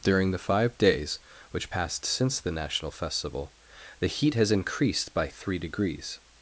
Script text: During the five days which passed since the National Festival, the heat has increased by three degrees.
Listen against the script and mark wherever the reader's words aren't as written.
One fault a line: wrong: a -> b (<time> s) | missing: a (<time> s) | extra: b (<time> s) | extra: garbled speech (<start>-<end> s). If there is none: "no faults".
no faults